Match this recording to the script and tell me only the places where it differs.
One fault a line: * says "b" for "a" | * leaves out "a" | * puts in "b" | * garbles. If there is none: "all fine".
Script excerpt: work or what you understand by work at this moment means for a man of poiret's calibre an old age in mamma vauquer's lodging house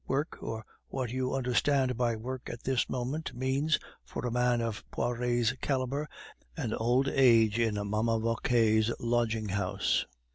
all fine